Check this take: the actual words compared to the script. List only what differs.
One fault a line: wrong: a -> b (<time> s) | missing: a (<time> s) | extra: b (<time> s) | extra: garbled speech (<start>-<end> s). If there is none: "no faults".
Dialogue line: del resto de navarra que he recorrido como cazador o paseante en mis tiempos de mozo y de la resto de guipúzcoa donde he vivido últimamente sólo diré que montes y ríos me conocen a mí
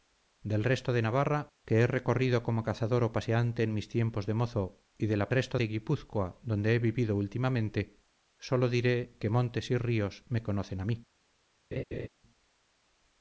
no faults